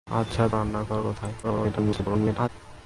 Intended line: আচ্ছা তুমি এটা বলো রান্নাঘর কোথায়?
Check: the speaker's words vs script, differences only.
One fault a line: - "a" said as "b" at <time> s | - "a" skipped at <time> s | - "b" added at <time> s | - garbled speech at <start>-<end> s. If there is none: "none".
- "তুমি এটা বলো" skipped at 0.4 s
- garbled speech at 1.4-2.5 s